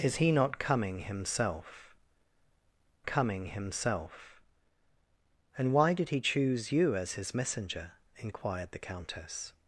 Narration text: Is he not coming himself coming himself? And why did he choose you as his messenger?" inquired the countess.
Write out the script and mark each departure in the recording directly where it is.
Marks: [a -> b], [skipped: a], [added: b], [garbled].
Is he not coming himself coming himself? And why did he choose you as his messenger?" inquired the countess.